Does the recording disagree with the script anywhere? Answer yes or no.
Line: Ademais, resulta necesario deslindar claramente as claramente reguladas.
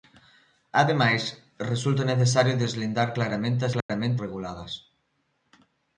no